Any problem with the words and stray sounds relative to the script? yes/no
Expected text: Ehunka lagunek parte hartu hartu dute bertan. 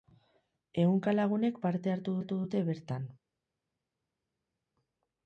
no